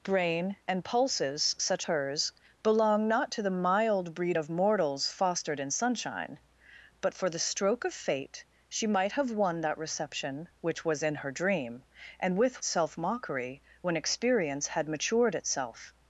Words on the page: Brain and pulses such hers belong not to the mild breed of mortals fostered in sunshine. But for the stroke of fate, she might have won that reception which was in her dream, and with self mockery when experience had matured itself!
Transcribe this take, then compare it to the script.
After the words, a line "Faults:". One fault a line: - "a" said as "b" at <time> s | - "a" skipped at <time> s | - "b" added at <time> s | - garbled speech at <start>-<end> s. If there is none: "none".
Brain and pulses such hers belong not to the mild breed of mortals fostered in sunshine. But for the stroke of fate, she might have won that reception which was in her dream, and with self mockery when experience had matured itself!
Faults:
none